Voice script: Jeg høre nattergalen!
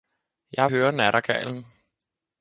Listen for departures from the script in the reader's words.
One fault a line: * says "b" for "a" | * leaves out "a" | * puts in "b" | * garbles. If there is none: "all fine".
all fine